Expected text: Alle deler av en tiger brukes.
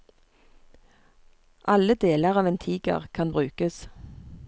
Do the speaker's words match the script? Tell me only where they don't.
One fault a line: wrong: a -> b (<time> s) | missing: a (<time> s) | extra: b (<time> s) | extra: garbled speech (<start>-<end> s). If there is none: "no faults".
extra: kan (3.1 s)